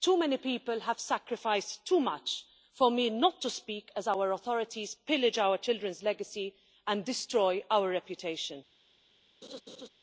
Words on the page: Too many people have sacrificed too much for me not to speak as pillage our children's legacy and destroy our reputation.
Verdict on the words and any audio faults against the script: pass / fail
fail